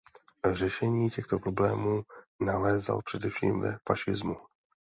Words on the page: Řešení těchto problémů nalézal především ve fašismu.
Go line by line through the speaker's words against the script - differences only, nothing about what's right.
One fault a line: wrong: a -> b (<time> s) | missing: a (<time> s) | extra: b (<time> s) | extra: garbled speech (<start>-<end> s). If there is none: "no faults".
no faults